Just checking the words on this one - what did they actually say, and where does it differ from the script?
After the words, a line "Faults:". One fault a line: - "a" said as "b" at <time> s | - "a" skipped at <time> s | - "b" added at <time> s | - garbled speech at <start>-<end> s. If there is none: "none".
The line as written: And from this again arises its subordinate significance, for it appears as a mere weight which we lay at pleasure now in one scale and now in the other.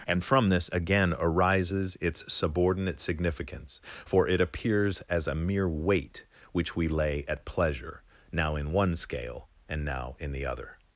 And from this again arises its subordinate significance, for it appears as a mere weight which we lay at pleasure now in one scale and now in the other.
Faults:
none